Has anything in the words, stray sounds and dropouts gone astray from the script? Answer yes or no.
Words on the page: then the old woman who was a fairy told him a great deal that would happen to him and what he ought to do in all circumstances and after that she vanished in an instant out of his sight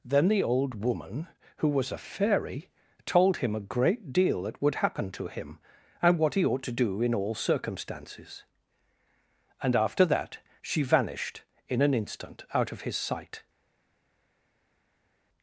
no